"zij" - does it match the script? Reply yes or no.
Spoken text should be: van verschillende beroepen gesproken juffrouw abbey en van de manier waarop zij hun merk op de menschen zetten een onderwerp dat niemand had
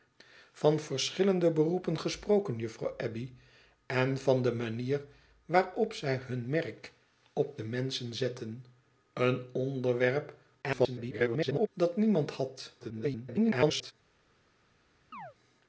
yes